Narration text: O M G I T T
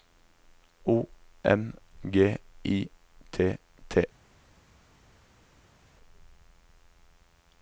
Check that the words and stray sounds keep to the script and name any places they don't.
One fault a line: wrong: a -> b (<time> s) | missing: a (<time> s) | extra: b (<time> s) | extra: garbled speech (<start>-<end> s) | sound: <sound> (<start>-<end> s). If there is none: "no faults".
no faults